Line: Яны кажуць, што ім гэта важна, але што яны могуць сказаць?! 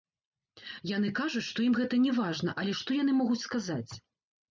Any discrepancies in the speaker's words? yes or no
yes